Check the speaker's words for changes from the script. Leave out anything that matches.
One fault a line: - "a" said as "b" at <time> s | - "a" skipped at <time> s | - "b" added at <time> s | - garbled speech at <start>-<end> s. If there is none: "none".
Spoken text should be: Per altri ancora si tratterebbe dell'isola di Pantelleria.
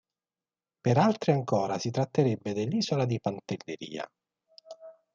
none